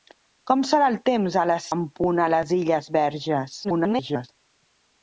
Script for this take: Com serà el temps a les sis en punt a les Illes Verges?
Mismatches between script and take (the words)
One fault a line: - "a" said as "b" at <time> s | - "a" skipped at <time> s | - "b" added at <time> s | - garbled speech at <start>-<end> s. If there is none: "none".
- "sis" skipped at 1.7 s
- garbled speech at 3.6-4.3 s